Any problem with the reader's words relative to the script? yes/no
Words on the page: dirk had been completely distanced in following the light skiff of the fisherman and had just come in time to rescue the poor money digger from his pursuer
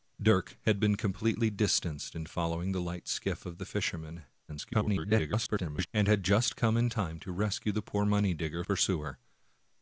yes